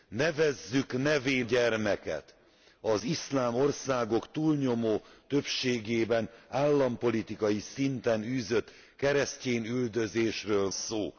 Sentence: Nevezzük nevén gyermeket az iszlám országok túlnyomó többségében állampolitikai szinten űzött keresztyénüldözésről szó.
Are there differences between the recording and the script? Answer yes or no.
no